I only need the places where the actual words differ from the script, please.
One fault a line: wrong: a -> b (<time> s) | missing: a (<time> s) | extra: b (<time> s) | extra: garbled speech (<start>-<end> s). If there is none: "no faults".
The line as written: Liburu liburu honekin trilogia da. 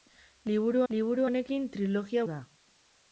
no faults